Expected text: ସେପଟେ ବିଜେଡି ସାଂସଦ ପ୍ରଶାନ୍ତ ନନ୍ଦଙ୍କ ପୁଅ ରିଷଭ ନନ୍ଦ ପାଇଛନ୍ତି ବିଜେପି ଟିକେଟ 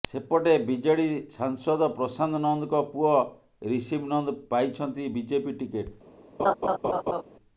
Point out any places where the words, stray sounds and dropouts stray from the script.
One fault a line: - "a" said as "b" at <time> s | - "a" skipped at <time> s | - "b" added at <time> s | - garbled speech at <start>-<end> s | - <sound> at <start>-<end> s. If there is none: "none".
- laugh at 6.4-7.2 s